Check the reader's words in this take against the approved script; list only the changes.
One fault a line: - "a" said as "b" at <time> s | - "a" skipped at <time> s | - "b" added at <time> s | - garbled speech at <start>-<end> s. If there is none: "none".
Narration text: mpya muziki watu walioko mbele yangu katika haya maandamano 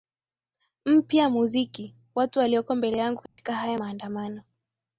none